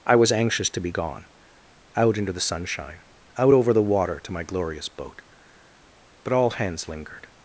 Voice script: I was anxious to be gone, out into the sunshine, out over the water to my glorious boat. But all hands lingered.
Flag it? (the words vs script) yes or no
no